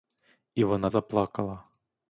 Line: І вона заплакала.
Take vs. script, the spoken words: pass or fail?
pass